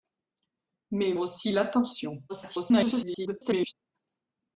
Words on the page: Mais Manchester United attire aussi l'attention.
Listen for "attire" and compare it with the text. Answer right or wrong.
wrong